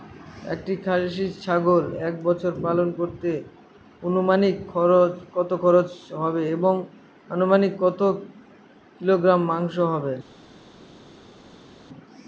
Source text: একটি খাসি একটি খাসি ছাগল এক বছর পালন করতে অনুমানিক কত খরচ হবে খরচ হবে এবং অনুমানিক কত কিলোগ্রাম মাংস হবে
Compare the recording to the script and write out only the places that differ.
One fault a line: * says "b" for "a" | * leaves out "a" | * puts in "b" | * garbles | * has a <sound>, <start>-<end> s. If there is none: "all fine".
* leaves out "একটি খাসি"
* leaves out "খরচ হবে"